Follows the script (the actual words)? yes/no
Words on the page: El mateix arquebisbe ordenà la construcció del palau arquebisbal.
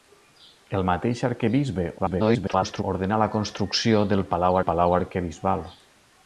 no